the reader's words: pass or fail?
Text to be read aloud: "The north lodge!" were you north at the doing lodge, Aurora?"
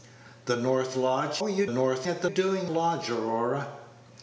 pass